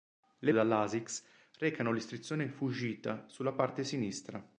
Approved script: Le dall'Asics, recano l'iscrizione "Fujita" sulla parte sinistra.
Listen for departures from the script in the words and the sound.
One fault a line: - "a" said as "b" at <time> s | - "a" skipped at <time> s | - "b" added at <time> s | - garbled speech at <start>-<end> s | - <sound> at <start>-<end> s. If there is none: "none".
none